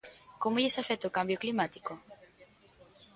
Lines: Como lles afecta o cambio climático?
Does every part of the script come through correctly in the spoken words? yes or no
yes